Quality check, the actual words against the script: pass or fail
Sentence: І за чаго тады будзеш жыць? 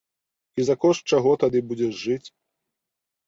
fail